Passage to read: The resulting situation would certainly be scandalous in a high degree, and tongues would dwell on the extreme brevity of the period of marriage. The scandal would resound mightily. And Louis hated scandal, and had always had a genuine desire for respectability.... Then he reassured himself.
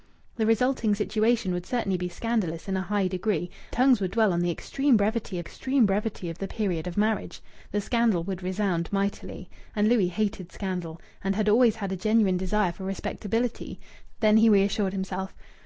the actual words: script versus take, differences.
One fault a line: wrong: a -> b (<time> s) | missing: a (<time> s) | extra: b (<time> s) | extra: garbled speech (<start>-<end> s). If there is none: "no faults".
missing: and (3.5 s)
extra: extreme brevity (5.4 s)